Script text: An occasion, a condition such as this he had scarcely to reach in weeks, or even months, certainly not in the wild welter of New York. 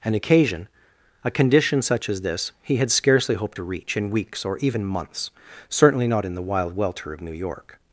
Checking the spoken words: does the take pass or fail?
fail